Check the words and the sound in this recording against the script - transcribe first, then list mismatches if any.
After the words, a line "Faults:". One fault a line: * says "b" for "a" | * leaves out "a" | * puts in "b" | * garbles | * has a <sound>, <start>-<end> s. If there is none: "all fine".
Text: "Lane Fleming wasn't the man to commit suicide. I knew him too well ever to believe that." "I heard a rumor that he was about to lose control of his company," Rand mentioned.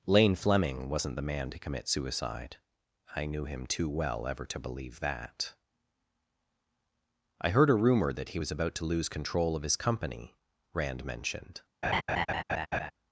"Lane Fleming wasn't the man to commit suicide. I knew him too well ever to believe that." "I heard a rumor that he was about to lose control of his company," Rand mentioned.
Faults:
* has a laugh, 11.8-12.9 s